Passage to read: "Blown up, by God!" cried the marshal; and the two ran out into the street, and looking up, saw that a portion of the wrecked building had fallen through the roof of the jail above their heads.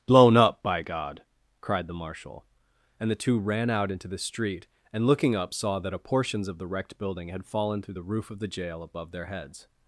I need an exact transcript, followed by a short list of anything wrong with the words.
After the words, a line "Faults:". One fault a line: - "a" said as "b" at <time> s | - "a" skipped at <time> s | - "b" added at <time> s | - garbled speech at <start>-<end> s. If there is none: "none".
"Blown up, by God!" cried the marshal; and the two ran out into the street, and looking up, saw that a portions of the wrecked building had fallen through the roof of the jail above their heads.
Faults:
- "portion" said as "portions" at 6.0 s